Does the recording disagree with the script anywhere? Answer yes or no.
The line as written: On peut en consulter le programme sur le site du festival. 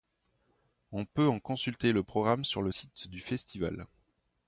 no